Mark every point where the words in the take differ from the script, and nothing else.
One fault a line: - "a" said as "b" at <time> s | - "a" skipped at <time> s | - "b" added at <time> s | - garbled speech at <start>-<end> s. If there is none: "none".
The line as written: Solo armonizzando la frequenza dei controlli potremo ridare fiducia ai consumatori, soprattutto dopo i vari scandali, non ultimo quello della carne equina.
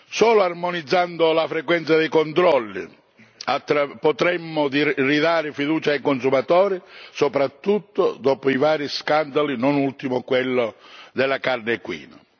none